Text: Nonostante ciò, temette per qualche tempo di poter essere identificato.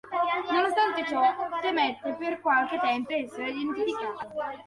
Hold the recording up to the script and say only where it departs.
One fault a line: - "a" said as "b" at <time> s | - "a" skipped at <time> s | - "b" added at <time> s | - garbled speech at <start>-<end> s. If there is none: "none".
- "di poter" skipped at 3.1 s